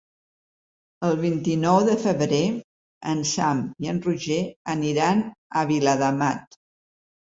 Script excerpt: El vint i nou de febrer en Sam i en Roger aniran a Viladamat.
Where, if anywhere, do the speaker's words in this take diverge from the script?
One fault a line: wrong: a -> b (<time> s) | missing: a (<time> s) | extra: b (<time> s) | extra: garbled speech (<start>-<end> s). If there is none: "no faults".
no faults